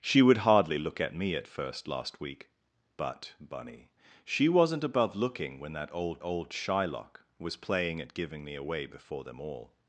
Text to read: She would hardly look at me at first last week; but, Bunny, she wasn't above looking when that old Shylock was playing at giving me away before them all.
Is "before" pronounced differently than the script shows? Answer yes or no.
no